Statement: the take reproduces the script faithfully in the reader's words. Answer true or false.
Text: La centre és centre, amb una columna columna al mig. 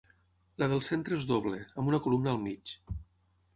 false